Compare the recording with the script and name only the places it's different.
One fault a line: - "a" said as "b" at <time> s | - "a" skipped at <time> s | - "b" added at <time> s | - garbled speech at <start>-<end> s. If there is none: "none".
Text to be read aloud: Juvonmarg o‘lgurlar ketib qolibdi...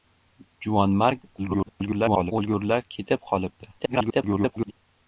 - garbled speech at 1.4-2.3 s
- garbled speech at 3.8-4.7 s